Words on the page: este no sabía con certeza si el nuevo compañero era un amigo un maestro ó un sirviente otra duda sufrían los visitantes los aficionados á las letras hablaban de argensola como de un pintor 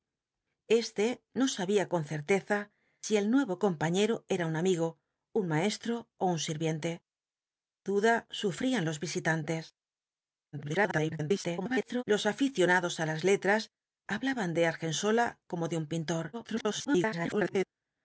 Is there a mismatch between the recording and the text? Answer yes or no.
yes